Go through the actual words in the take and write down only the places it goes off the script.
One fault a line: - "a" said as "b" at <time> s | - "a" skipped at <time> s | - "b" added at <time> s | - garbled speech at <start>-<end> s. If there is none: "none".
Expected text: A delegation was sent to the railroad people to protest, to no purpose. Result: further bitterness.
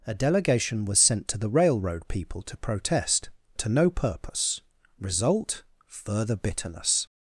none